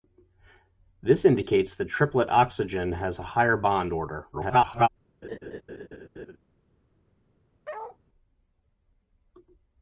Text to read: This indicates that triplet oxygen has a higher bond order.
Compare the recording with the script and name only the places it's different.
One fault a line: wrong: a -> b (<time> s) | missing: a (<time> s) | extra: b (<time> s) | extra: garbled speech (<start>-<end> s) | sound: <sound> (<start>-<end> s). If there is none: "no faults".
extra: garbled speech (4.3-4.9 s)
sound: laugh (5.2-6.4 s)
sound: bark (7.6-8.0 s)